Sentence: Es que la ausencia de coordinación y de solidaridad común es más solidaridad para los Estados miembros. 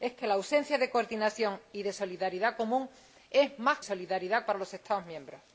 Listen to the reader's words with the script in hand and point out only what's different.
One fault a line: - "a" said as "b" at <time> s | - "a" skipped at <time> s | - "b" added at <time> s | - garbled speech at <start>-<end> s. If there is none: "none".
none